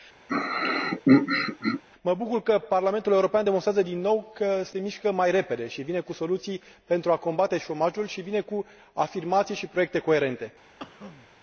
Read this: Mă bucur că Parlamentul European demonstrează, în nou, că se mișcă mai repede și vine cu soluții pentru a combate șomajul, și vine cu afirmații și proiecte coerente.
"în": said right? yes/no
no